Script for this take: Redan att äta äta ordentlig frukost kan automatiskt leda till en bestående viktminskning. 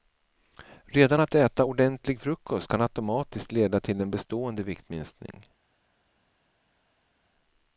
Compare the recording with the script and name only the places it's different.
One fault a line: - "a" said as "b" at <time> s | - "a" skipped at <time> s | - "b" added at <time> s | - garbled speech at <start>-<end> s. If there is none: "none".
- "äta" skipped at 1.6 s